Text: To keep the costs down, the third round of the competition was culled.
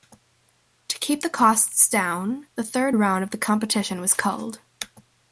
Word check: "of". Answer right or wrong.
right